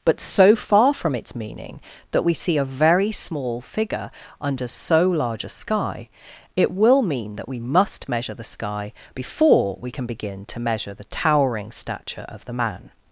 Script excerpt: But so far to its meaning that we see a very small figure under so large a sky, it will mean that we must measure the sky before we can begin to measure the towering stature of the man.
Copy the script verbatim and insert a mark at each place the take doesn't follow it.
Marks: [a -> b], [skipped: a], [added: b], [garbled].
But so far [to -> from] its meaning that we see a very small figure under so large a sky, it will mean that we must measure the sky before we can begin to measure the towering stature of the man.